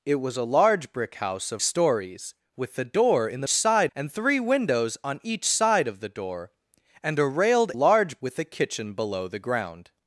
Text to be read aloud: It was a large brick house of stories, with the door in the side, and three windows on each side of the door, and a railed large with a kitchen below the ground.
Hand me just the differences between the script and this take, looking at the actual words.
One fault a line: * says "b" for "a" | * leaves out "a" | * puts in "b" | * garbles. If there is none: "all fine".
all fine